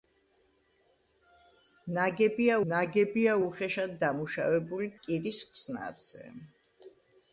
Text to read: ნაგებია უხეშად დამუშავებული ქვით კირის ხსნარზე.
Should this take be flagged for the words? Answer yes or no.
yes